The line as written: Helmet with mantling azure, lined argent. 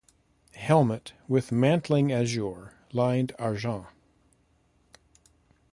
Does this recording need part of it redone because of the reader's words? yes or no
no